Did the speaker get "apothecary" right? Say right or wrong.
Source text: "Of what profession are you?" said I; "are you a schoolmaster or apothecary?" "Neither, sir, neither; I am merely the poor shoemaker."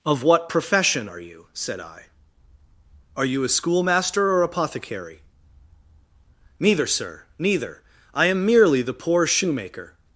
right